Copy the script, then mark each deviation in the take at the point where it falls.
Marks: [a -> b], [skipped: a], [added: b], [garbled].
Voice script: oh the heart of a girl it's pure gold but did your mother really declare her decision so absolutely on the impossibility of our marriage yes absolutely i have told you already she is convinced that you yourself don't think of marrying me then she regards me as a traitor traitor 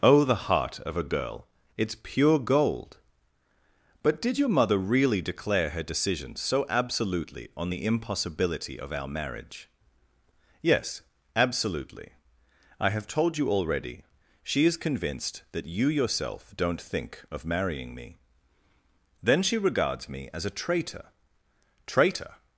oh the heart of a girl it's pure gold but did your mother really declare her decision so absolutely on the impossibility of our marriage yes absolutely i have told you already she is convinced that you yourself don't think of marrying me then she regards me as a traitor traitor